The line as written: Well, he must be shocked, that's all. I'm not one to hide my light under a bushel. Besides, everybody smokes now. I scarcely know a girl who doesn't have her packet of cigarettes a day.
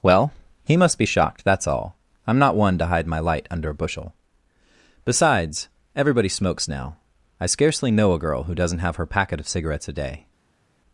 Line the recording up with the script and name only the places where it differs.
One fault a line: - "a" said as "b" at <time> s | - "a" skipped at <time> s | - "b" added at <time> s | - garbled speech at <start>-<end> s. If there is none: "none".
none